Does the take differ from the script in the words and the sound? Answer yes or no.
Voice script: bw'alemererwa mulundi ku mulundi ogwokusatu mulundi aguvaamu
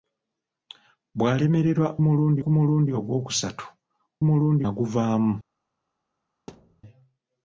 yes